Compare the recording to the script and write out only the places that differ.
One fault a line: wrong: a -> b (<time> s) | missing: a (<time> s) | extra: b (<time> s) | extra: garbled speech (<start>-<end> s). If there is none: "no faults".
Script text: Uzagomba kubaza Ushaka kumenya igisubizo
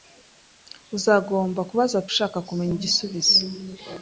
no faults